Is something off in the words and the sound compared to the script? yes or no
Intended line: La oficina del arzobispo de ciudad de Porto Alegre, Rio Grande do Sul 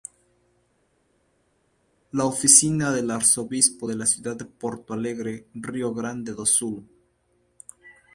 yes